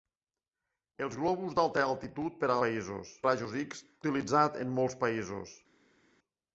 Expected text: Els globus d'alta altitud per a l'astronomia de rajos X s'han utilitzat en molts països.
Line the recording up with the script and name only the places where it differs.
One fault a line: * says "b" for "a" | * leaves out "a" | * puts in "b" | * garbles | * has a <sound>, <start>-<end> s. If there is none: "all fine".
* says "països" for "l'astronomia"
* leaves out "s'han"